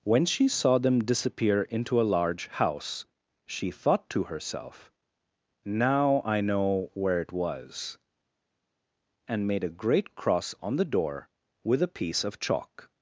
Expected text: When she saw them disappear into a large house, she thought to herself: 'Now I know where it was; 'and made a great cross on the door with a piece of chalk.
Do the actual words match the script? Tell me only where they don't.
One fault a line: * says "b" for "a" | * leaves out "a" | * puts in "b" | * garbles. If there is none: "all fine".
all fine